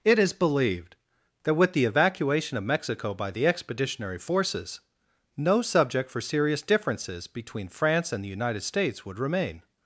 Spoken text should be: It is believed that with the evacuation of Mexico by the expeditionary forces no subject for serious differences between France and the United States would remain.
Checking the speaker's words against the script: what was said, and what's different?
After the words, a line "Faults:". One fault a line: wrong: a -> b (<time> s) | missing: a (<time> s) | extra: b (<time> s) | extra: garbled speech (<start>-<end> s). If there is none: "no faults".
It is believed that with the evacuation of Mexico by the expeditionary forces no subject for serious differences between France and the United States would remain.
Faults:
no faults